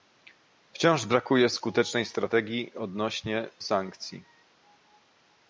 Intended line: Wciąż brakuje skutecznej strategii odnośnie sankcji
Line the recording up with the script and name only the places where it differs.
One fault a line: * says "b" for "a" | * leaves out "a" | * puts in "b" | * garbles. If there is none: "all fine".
all fine